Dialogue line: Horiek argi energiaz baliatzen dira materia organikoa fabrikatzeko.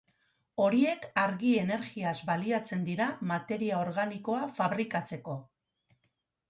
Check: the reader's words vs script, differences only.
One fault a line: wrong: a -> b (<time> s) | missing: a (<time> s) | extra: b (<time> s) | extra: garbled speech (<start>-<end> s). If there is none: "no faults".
no faults